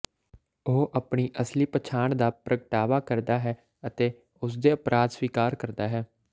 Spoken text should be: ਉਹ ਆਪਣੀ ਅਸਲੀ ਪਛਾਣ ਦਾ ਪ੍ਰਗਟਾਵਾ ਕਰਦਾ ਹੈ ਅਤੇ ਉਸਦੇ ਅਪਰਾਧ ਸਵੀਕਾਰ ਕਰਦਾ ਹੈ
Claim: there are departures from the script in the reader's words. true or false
false